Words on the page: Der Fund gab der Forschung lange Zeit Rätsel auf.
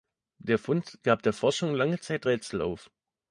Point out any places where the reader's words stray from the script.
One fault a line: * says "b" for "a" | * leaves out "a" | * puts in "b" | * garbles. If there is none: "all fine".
all fine